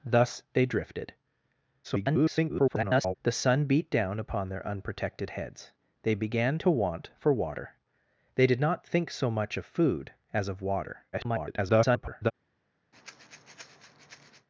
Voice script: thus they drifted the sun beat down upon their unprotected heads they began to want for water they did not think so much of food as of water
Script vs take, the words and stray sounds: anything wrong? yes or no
yes